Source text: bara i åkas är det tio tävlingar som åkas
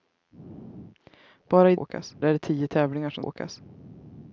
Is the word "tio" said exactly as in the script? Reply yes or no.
yes